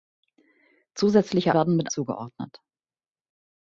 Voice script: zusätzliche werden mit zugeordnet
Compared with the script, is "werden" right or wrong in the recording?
right